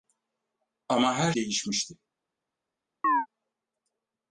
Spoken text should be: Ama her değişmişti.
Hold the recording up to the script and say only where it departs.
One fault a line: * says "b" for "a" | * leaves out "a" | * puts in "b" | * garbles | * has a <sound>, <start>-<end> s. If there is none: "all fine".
* has a chirp, 3.0-3.3 s